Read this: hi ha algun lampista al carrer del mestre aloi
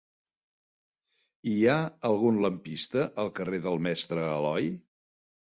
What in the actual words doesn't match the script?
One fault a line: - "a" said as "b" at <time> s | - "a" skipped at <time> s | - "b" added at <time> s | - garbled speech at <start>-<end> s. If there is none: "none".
none